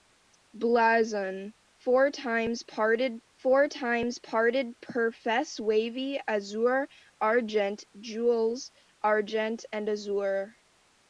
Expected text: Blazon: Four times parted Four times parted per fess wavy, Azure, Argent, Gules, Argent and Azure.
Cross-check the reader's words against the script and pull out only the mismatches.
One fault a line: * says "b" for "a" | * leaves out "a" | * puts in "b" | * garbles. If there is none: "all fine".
all fine